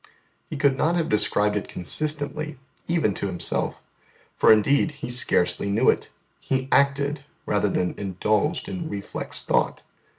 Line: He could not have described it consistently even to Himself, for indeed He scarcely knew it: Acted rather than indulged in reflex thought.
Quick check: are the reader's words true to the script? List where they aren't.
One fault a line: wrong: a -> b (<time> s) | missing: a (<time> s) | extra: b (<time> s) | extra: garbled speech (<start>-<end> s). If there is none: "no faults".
extra: He (6.4 s)